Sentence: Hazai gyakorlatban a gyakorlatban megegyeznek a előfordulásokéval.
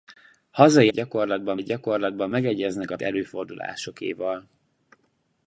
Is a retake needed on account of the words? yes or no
no